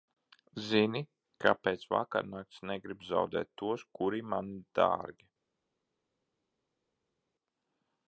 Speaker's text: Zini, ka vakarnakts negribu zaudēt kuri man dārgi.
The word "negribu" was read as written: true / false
true